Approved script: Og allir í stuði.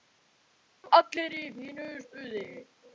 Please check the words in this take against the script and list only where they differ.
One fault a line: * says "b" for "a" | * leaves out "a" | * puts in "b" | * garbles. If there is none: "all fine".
* puts in "fínu"